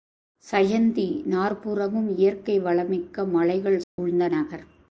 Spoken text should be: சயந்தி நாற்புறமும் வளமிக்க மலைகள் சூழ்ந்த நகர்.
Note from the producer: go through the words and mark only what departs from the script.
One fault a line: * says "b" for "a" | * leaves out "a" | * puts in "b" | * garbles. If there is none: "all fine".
* puts in "இயற்கை"